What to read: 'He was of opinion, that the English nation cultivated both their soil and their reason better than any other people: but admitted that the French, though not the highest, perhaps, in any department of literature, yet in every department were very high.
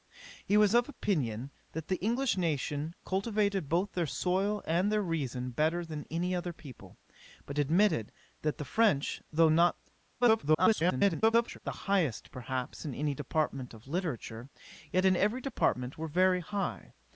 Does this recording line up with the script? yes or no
no